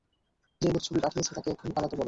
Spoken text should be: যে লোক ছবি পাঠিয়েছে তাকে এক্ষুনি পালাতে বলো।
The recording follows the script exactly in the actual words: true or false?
true